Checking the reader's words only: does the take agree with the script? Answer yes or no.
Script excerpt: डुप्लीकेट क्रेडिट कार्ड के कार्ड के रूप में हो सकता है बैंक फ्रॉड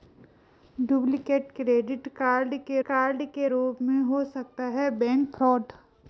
yes